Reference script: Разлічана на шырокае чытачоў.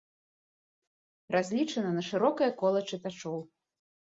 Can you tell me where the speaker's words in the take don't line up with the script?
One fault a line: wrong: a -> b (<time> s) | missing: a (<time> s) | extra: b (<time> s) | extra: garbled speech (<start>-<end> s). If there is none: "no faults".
extra: кола (2.6 s)